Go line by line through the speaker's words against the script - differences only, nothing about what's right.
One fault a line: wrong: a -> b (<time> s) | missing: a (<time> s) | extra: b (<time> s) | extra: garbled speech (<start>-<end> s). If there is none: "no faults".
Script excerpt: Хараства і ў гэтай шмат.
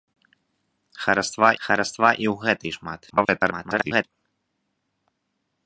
extra: хараства (1.7 s)
extra: garbled speech (3.1-4.0 s)